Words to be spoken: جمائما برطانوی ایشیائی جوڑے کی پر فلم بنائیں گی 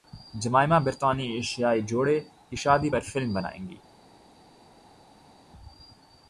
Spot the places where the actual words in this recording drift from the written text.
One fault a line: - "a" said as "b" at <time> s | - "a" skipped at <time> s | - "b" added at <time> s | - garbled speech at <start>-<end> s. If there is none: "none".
- "شادی" added at 2.6 s